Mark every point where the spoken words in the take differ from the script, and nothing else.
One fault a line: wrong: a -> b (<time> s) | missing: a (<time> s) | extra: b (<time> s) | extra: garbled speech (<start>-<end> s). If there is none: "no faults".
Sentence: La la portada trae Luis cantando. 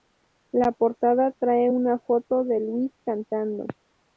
missing: la (0.7 s)
extra: una foto de (1.6 s)